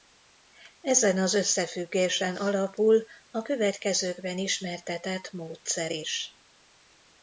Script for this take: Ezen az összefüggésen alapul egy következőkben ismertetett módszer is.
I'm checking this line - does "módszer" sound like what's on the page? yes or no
yes